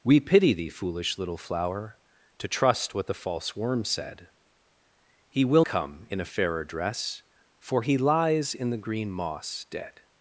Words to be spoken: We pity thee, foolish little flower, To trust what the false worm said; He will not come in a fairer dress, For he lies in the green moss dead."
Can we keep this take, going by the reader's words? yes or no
no